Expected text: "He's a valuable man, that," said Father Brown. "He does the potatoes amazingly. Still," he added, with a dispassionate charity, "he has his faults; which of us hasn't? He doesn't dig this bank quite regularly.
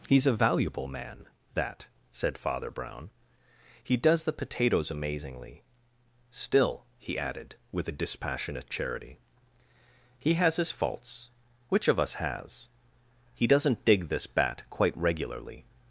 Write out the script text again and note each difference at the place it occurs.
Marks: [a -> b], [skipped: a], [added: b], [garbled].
"He's a valuable man, that," said Father Brown. "He does the potatoes amazingly. Still," he added, with a dispassionate charity, "he has his faults; which of us [hasn't? -> has] He doesn't dig this [bank -> bat] quite regularly.